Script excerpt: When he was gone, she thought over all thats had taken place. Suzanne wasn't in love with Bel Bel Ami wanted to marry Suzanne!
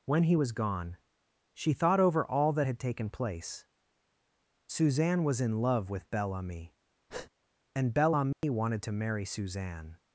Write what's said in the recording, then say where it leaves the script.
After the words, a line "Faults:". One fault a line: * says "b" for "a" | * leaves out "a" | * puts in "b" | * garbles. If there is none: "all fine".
When he was gone, she thought over all that had taken place. Suzanne was in love with Bel Ami, and Bel Ami wanted to marry Suzanne!
Faults:
* says "that" for "thats"
* says "was" for "wasn't"
* puts in "Ami and"